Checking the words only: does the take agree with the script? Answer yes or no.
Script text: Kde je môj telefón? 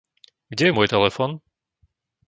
yes